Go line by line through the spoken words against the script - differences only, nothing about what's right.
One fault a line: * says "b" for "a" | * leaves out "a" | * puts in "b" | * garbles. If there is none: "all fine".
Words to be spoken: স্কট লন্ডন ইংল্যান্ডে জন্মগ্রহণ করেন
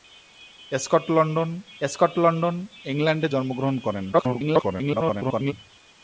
* puts in "স্কট লন্ডন"
* garbles